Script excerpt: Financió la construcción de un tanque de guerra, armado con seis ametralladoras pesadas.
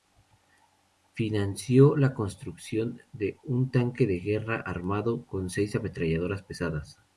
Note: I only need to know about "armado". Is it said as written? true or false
true